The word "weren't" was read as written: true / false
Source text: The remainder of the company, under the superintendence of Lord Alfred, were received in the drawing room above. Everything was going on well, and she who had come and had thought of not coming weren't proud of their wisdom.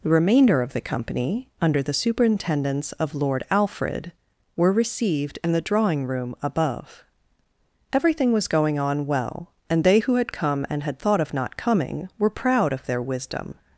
false